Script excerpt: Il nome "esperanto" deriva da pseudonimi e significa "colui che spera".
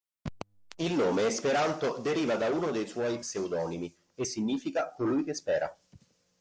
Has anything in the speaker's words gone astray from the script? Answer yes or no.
yes